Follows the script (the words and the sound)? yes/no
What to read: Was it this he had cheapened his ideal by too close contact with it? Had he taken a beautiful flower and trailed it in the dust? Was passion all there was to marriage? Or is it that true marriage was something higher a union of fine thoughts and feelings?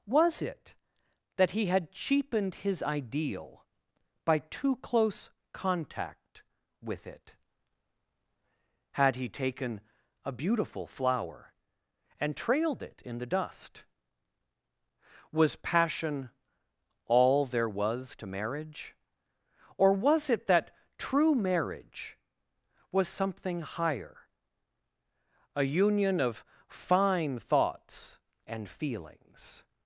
no